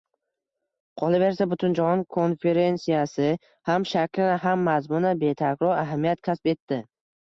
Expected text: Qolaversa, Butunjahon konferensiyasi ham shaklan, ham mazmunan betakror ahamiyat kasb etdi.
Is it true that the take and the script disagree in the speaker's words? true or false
false